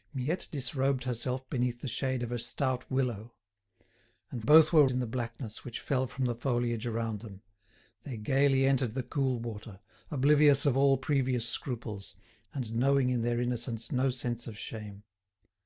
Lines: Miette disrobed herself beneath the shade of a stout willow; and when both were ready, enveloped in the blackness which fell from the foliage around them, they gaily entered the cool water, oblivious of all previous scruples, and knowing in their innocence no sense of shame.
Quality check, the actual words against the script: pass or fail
fail